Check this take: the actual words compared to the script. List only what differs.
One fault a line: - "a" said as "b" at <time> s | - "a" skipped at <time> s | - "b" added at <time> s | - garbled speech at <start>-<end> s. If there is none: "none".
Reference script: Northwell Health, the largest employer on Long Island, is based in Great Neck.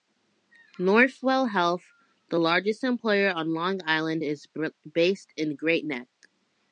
none